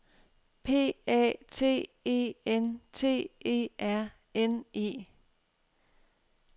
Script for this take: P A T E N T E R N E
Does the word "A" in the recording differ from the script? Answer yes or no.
no